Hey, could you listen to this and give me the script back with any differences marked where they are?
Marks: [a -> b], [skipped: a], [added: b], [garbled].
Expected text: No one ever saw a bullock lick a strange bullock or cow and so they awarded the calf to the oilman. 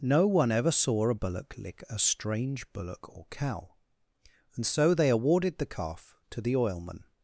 No one ever saw a bullock lick a strange bullock or cow and so they awarded the calf to the oilman.